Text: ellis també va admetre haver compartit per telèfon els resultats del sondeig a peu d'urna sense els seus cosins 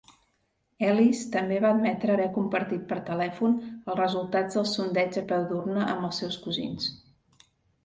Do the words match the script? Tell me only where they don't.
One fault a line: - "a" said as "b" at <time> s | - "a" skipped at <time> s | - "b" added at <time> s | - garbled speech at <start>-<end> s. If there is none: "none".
- "sense" said as "amb" at 5.9 s